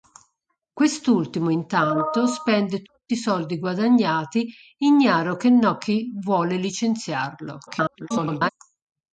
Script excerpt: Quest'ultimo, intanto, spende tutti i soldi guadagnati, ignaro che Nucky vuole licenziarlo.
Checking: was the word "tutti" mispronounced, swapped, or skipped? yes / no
no